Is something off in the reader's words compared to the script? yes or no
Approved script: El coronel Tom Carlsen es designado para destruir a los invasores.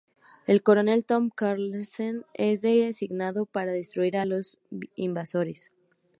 no